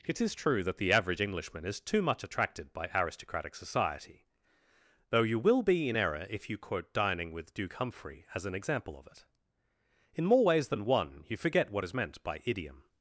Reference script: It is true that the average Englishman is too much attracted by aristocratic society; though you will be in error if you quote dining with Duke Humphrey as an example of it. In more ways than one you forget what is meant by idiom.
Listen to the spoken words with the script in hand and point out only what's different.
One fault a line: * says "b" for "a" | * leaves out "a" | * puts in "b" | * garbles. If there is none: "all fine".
all fine